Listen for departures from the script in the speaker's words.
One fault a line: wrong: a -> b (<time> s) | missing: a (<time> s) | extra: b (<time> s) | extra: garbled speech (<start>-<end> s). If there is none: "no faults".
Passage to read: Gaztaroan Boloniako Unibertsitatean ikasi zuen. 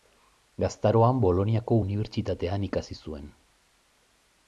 no faults